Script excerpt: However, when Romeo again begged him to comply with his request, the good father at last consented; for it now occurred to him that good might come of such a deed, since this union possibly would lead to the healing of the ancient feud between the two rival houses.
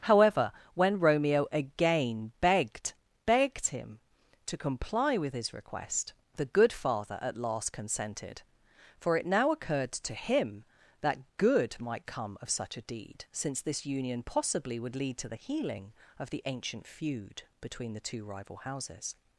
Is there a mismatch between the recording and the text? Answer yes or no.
yes